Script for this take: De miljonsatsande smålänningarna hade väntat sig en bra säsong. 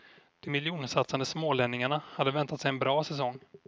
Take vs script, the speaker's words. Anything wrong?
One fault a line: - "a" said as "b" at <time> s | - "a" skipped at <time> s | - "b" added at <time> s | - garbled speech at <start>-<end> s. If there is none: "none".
none